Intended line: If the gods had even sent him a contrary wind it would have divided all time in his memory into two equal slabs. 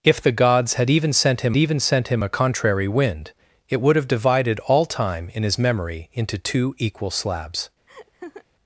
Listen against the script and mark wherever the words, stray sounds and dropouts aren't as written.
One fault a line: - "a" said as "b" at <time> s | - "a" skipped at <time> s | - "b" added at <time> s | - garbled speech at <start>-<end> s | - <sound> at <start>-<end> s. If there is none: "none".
- "even sent him" added at 1.6 s
- laugh at 7.9-8.4 s